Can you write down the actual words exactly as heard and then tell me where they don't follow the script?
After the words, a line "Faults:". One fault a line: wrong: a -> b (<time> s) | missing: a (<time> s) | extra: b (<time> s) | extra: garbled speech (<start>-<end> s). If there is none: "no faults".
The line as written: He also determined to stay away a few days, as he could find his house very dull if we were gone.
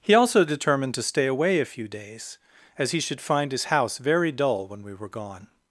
He also determined to stay away a few days, as he should find his house very dull when we were gone.
Faults:
wrong: could -> should (3.0 s)
wrong: if -> when (4.7 s)